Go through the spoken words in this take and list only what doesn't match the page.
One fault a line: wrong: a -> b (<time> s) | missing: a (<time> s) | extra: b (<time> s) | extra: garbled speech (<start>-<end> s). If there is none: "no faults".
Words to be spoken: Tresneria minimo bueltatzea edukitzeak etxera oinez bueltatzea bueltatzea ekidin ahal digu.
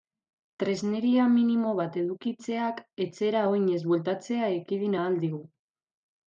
wrong: bueltatzea -> bat (1.8 s)
missing: bueltatzea (4.5 s)